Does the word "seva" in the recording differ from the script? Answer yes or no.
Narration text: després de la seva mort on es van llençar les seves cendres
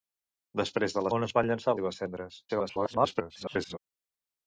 yes